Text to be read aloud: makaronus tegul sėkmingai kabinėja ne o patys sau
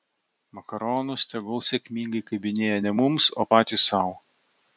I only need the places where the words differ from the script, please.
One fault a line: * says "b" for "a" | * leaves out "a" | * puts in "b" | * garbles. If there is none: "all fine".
* puts in "mums"